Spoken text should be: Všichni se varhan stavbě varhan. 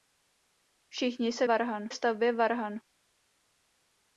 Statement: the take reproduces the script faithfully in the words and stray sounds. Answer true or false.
true